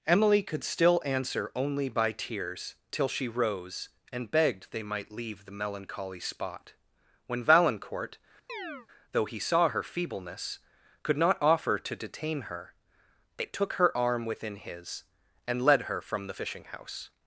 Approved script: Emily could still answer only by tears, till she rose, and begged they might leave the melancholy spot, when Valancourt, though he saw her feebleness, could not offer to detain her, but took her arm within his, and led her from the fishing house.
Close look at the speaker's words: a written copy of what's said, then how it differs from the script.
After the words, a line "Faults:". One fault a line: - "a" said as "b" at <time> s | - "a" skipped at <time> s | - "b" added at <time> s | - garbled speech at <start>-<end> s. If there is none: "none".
Emily could still answer only by tears, till she rose, and begged they might leave the melancholy spot, when Valancourt, though he saw her feebleness, could not offer to detain her, they took her arm within his, and led her from the fishing house.
Faults:
- "but" said as "they" at 13.4 s